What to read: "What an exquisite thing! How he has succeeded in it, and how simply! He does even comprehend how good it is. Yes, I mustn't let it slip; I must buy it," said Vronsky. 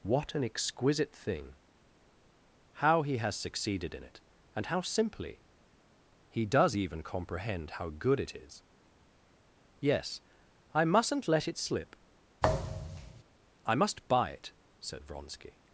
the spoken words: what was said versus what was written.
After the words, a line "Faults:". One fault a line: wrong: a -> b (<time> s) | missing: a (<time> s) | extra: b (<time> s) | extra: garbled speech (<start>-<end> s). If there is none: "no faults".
"What an exquisite thing! How he has succeeded in it, and how simply! He does even comprehend how good it is. Yes, I mustn't let it slip; I must buy it," said Vronsky.
Faults:
no faults